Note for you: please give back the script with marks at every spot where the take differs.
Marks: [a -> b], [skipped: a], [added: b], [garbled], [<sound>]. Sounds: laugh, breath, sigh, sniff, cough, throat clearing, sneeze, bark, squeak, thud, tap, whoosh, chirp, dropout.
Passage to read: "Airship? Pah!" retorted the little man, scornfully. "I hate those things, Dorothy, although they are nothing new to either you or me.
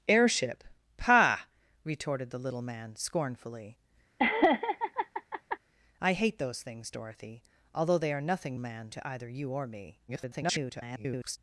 "Airship? Pah!" retorted the little man, scornfully. [laugh] "I hate those things, Dorothy, although they are nothing [new -> man] to either you or me. [garbled]